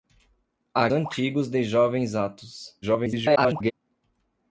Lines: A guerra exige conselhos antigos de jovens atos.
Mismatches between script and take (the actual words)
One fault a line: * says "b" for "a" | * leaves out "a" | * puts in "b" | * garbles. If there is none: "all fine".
* leaves out "guerra exige conselhos"
* garbles